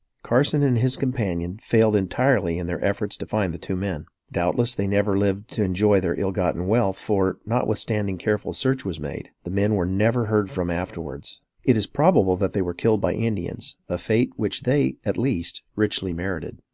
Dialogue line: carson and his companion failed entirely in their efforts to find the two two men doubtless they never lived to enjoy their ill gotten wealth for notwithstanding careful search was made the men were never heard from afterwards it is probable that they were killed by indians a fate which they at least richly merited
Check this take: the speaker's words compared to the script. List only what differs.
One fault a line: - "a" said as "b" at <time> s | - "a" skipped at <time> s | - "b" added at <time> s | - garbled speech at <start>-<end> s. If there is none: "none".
- "two" skipped at 3.7 s